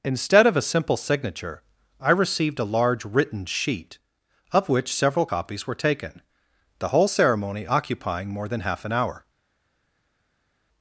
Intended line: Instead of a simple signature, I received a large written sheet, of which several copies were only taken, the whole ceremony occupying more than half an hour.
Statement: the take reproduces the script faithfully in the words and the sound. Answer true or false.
false